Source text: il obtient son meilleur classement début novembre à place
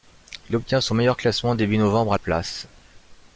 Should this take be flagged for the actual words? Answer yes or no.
no